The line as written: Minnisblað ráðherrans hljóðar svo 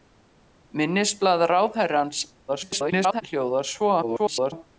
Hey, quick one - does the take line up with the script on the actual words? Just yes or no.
no